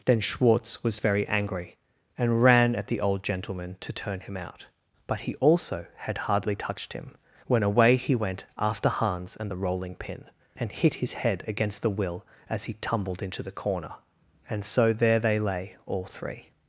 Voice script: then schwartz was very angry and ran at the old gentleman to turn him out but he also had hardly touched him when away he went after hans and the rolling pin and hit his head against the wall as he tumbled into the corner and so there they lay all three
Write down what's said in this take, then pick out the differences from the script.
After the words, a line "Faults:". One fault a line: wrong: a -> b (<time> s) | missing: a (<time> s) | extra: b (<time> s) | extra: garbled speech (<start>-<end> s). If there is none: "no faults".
then schwartz was very angry and ran at the old gentleman to turn him out but he also had hardly touched him when away he went after hans and the rolling pin and hit his head against the will as he tumbled into the corner and so there they lay all three
Faults:
wrong: wall -> will (11.9 s)